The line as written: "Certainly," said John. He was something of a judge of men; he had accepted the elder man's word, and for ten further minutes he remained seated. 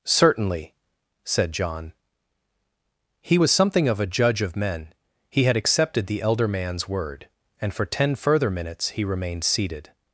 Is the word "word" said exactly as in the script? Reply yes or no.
yes